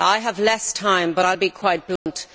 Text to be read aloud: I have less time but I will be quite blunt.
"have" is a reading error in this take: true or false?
false